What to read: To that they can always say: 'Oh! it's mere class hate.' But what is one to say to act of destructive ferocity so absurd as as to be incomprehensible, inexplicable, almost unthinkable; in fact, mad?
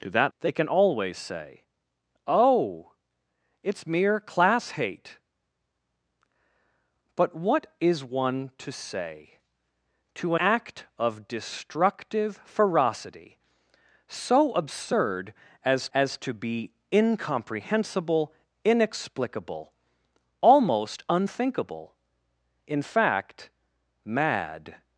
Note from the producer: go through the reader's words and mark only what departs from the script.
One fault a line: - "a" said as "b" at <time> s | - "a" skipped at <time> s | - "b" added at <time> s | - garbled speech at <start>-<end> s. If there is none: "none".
none